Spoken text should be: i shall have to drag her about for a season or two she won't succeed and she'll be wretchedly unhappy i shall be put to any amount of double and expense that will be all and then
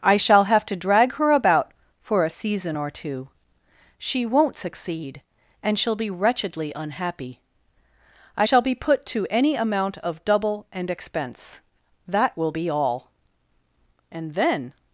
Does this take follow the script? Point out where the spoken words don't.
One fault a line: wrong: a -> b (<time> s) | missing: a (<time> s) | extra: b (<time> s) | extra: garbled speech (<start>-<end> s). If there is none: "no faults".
no faults